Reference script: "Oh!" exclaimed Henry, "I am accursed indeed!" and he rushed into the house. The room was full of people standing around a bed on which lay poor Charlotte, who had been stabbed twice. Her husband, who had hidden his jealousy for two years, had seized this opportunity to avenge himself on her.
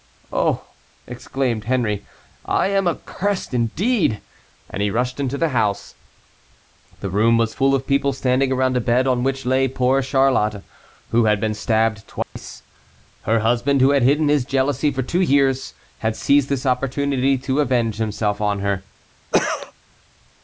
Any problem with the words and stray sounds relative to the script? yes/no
yes